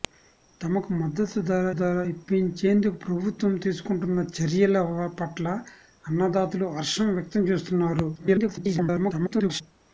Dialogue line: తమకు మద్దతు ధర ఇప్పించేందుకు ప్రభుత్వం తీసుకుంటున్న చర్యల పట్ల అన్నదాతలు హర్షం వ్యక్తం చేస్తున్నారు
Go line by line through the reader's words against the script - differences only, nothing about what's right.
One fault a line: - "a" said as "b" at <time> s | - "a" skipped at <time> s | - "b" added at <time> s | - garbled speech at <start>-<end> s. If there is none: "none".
- "ధర" added at 1.8 s
- garbled speech at 8.1-9.6 s